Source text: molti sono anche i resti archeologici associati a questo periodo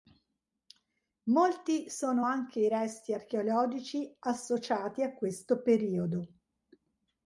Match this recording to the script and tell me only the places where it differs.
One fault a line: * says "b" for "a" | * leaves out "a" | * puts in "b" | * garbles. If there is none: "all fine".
all fine